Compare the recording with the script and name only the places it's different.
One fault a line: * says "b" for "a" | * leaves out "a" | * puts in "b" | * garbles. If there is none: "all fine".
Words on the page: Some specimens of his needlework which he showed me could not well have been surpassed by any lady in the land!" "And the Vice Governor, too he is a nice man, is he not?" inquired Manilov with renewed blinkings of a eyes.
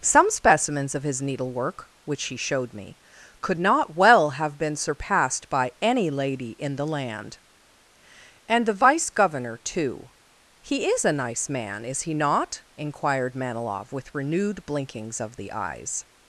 * says "the" for "a"